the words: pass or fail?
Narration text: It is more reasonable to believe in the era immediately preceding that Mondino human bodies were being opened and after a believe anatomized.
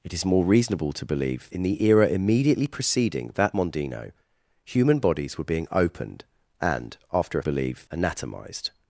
pass